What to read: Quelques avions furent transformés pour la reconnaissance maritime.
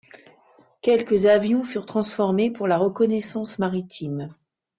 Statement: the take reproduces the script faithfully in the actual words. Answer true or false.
true